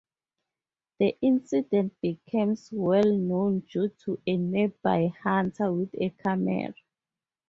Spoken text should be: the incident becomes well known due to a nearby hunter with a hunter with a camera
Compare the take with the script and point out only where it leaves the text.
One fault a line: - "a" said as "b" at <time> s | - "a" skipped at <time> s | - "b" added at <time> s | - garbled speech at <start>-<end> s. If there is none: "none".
- "hunter with a" skipped at 6.1 s